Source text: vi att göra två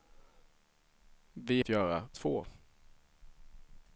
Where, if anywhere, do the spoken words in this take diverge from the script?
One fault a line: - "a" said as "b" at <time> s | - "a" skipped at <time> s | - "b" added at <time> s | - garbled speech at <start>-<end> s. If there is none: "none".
none